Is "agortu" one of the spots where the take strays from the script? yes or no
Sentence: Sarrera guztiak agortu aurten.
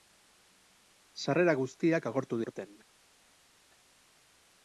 no